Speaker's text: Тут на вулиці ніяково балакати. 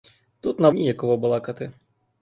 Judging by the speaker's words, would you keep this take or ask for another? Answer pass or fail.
fail